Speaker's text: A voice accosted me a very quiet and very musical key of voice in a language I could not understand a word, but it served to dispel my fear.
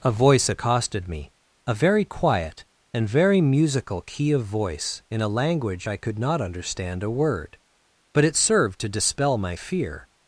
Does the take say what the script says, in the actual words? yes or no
yes